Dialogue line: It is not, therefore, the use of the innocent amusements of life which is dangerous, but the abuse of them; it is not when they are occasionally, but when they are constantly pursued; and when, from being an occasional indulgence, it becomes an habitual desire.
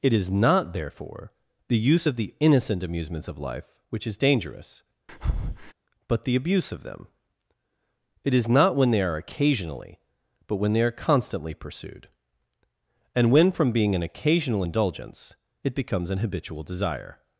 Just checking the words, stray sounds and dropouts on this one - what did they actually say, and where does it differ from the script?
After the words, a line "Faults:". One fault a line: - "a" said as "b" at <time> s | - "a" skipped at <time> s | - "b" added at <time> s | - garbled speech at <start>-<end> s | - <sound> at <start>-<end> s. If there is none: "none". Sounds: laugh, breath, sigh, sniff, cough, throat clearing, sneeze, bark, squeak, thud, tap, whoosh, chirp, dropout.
It is not, therefore, the use of the innocent amusements of life which is dangerous, but the abuse of them; it is not when they are occasionally, but when they are constantly pursued; and when, from being an occasional indulgence, it becomes an habitual desire.
Faults:
- breath at 5.1-5.7 s